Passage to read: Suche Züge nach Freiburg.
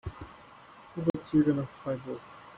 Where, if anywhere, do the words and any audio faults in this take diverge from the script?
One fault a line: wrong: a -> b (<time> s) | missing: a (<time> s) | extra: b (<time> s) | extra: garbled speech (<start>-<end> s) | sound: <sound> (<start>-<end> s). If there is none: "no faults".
sound: dropout (1.1-1.1 s)